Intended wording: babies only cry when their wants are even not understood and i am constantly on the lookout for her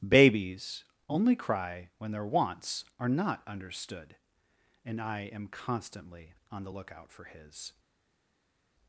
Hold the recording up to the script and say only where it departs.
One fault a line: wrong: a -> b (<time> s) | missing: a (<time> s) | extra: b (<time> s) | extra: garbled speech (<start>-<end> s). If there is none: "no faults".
missing: even (3.1 s)
wrong: her -> his (7.3 s)